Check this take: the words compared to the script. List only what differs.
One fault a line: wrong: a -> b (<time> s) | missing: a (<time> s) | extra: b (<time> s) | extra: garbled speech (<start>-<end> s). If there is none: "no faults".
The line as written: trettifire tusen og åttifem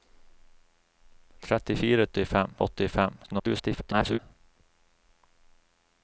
wrong: tusen -> åttifem (2.0 s)
extra: garbled speech (3.2-4.2 s)